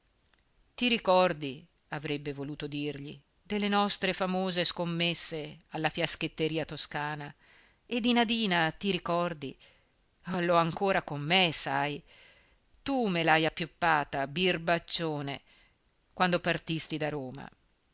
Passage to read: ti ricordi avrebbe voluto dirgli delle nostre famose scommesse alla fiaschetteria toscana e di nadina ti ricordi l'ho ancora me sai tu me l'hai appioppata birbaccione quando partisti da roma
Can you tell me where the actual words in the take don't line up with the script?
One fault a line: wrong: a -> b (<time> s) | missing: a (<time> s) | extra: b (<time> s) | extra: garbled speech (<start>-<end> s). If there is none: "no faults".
extra: con (11.0 s)